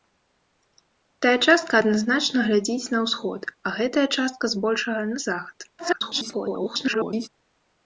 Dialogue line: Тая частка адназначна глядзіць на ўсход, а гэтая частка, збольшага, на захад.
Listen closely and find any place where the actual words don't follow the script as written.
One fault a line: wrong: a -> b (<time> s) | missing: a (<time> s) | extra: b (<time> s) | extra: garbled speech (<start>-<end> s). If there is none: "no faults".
extra: garbled speech (5.8-7.3 s)